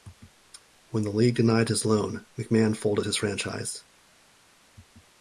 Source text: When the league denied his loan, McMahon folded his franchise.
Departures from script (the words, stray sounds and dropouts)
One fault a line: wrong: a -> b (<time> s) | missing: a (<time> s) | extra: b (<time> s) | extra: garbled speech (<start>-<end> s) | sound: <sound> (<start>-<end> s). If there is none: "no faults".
no faults